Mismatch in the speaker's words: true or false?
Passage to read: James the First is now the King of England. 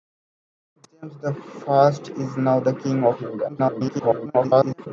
true